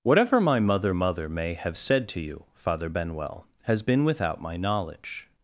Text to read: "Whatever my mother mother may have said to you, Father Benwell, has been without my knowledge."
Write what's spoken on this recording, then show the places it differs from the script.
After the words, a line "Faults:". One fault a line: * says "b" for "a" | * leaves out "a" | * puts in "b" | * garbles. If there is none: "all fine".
"Whatever my mother mother may have said to you, Father Benwell, has been without my knowledge."
Faults:
all fine